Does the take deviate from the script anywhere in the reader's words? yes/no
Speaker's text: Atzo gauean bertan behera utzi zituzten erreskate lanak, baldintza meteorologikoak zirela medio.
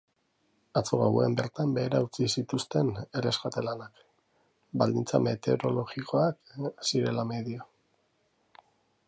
no